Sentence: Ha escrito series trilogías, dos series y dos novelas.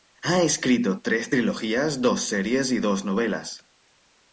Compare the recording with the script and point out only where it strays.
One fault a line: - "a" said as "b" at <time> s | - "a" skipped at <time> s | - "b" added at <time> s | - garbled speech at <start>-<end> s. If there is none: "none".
- "series" said as "tres" at 1.0 s